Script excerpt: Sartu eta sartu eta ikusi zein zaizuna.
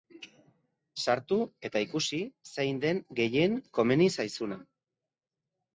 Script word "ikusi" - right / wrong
wrong